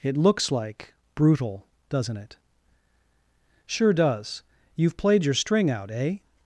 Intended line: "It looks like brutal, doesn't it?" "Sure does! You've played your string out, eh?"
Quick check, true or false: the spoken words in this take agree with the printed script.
true